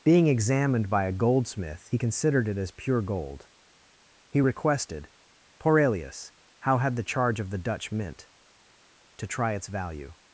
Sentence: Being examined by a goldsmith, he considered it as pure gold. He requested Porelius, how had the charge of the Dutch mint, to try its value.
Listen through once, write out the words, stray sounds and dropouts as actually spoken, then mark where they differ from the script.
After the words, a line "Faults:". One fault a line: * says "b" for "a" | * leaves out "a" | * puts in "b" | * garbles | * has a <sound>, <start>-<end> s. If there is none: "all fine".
Being examined by a goldsmith, he considered it as pure gold. He requested Porelius, how had the charge of the Dutch mint, to try its value.
Faults:
all fine